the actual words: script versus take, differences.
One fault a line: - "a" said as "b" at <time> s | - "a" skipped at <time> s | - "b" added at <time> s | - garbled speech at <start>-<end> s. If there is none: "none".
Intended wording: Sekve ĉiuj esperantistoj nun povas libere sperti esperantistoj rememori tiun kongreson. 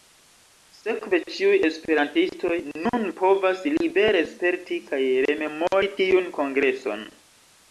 - "esperantistoj" said as "kaj" at 4.9 s